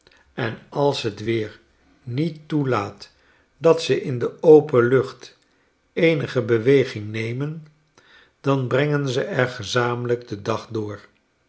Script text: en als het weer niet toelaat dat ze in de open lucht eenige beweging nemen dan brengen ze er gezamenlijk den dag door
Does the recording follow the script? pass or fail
pass